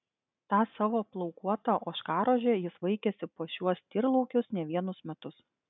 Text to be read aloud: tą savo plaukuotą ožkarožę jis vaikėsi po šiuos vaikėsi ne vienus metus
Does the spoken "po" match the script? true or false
true